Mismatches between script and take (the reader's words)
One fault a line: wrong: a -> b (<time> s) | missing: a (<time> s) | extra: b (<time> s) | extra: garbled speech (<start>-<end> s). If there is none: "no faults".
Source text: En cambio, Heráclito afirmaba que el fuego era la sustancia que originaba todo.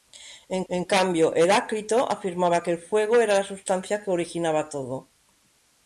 extra: en (0.7 s)